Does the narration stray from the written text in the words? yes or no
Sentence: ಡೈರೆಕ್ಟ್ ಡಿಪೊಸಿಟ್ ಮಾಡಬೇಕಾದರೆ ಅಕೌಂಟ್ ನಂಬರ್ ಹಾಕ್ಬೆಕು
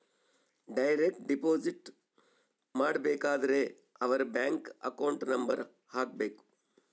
yes